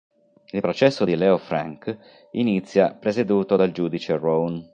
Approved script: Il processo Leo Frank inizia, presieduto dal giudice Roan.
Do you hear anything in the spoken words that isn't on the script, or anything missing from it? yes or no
yes